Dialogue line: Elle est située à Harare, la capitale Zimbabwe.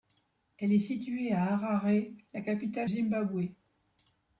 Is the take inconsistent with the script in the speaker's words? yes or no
no